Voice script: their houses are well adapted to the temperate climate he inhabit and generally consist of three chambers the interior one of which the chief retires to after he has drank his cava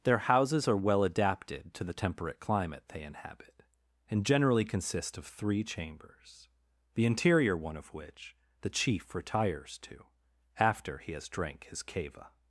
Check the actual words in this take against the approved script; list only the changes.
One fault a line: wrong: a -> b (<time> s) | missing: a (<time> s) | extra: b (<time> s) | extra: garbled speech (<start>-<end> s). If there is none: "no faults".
wrong: he -> they (2.9 s)